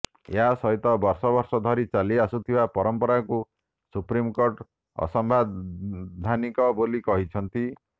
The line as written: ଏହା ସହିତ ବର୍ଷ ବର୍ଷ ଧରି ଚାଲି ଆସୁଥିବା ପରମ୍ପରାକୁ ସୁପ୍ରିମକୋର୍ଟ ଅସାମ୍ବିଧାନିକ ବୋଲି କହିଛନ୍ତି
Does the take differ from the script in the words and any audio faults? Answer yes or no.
no